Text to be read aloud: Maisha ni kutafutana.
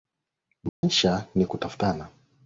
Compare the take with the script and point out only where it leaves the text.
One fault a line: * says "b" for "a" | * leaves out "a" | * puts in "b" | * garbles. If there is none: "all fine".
all fine